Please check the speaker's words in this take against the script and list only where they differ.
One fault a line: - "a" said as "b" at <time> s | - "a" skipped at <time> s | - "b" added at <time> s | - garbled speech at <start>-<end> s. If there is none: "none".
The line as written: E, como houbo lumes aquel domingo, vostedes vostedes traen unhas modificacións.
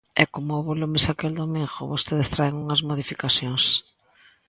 - "vostedes" skipped at 2.3 s